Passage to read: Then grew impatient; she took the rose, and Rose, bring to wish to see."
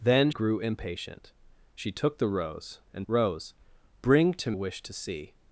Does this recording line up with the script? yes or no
yes